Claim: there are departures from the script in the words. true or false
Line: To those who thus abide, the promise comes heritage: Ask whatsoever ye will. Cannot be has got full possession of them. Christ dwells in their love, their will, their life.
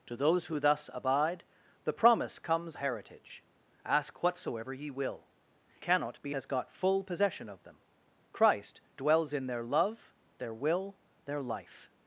false